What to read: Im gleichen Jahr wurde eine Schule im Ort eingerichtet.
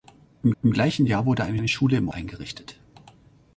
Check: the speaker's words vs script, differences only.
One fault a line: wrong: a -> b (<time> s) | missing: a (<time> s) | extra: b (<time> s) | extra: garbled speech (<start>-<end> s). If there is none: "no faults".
extra: im (0.6 s)
extra: eine (1.5 s)
missing: Ort (2.1 s)